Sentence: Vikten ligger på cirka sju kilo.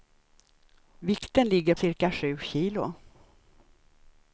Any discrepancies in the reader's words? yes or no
yes